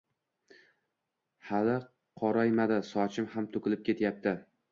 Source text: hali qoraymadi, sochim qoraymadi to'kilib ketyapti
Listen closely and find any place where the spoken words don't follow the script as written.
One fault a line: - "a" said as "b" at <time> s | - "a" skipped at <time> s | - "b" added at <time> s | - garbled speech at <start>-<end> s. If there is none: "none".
- "qoraymadi" said as "ham" at 3.4 s